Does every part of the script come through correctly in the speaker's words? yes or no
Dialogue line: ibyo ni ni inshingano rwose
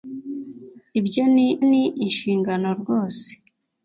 yes